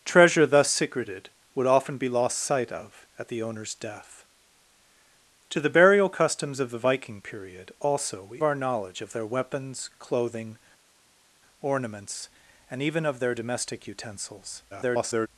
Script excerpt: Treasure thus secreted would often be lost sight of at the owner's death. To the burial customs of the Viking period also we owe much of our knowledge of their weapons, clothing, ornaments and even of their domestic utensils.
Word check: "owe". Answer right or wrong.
wrong